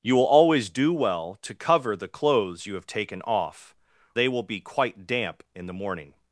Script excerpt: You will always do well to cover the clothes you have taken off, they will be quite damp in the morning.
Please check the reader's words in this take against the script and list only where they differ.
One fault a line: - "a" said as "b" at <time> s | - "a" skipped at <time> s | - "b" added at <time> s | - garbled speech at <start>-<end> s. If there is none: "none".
none